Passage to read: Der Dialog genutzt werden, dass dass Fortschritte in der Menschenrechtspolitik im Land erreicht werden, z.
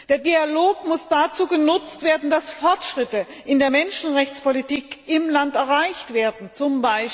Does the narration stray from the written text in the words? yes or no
yes